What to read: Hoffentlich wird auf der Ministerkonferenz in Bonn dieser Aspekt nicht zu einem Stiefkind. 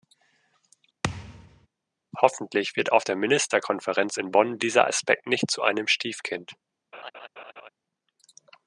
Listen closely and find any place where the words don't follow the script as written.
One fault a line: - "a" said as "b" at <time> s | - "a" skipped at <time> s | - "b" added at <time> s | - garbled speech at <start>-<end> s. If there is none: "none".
none